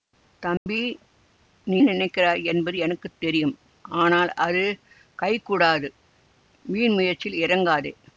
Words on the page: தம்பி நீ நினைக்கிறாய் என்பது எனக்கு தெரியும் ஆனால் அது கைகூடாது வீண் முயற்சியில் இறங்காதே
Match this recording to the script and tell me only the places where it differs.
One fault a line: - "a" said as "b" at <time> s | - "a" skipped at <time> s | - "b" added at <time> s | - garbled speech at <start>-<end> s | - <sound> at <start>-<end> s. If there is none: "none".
- dropout at 0.6-0.7 s